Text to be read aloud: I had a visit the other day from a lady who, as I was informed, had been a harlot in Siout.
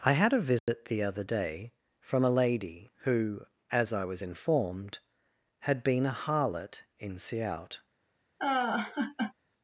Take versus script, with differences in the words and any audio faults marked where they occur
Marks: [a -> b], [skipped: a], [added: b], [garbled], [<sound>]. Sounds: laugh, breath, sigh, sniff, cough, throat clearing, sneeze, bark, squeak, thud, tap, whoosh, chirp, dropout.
I had a visit [dropout] the other day from a lady who, as I was informed, had been a harlot in Siout. [laugh]